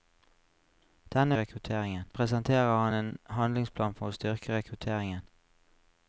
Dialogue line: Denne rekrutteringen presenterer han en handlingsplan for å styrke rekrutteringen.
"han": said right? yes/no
yes